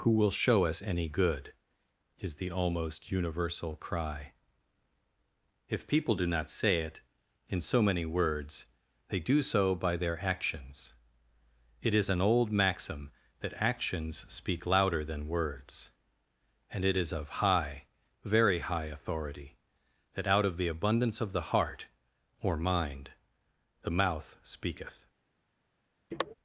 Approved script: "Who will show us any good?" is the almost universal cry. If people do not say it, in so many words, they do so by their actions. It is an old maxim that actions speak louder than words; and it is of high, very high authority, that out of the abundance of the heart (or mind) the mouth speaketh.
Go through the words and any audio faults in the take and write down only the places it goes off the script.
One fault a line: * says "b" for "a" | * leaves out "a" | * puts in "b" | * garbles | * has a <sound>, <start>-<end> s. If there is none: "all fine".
* has a sniff, 26.1-26.3 s